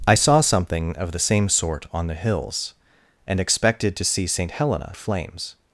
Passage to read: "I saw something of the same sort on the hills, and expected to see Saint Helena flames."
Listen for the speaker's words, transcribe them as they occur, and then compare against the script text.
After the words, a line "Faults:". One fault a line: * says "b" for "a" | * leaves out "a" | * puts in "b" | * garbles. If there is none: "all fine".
"I saw something of the same sort on the hills, and expected to see Saint Helena flames."
Faults:
all fine